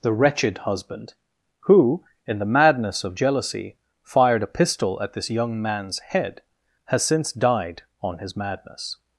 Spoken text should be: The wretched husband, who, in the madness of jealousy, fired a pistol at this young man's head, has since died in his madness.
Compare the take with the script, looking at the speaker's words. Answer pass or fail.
fail